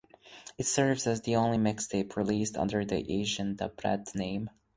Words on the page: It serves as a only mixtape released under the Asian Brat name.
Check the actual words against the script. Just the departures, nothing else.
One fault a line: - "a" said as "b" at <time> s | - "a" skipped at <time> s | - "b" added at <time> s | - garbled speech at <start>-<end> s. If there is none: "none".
- "a" said as "the" at 1.2 s
- "Da" added at 3.6 s